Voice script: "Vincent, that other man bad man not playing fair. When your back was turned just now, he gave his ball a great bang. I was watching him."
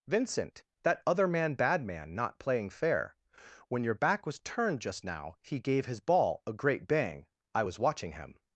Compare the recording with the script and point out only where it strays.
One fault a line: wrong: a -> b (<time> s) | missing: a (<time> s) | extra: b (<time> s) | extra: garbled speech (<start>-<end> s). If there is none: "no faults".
no faults